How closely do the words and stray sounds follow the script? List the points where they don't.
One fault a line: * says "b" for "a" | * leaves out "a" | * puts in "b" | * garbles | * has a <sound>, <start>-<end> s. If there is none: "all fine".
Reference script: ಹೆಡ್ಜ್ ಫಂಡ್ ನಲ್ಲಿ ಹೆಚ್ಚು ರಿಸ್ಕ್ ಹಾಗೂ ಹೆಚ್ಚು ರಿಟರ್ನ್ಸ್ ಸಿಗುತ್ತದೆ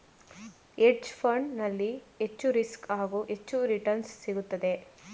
all fine